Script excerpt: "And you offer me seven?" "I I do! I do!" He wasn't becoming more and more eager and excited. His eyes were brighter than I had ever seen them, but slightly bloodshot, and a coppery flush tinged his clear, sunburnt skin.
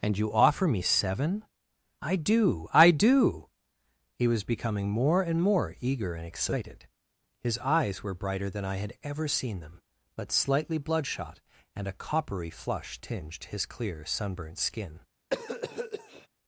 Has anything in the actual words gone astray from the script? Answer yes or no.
yes